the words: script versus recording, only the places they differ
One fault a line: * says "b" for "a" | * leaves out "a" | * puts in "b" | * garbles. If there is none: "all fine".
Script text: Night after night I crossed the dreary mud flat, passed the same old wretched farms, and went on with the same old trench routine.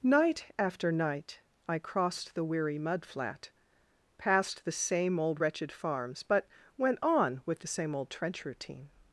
* says "weary" for "dreary"
* says "but" for "and"